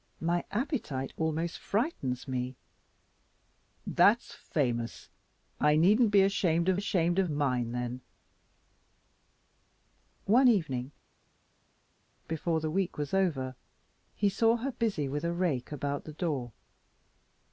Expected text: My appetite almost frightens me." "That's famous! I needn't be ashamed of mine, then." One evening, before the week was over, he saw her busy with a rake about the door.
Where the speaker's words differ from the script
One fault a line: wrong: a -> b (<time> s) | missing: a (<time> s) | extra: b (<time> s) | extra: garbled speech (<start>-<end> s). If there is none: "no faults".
extra: ashamed of (6.7 s)